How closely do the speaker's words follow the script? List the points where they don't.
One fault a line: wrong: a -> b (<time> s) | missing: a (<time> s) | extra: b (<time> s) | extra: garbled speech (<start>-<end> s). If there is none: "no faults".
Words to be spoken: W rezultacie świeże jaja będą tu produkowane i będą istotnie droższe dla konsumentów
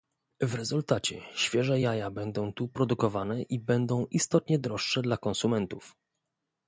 no faults